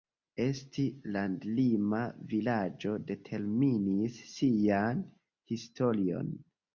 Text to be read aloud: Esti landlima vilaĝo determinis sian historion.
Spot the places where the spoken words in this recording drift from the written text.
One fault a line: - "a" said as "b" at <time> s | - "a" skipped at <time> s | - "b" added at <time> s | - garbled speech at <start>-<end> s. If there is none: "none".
none